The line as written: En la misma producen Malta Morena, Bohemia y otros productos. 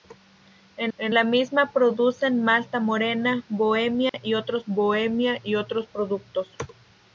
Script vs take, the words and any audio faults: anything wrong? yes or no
yes